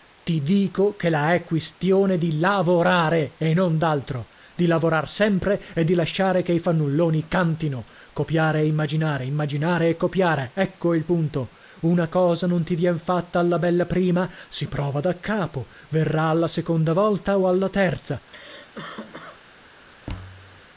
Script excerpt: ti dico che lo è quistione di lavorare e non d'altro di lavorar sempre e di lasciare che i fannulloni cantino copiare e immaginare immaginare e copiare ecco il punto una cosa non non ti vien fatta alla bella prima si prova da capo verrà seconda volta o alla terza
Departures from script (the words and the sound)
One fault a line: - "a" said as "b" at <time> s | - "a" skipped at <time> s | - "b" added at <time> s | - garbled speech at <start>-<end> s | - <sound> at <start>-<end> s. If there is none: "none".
- "lo" said as "la" at 1.1 s
- "non" skipped at 12.6 s
- "alla" added at 16.3 s
- cough at 18.3-19.4 s
- thud at 20.1-20.6 s